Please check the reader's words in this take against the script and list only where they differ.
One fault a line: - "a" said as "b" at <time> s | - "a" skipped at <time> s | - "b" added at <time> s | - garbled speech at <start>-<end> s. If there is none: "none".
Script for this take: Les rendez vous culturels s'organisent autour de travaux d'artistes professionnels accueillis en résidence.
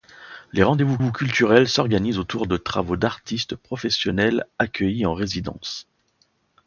- "vous" added at 1.0 s